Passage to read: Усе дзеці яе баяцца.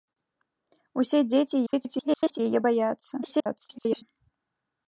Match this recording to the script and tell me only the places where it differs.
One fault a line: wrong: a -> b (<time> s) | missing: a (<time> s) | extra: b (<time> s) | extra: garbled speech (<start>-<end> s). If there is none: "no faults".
extra: garbled speech (1.7-2.4 s)
extra: garbled speech (3.2-4.0 s)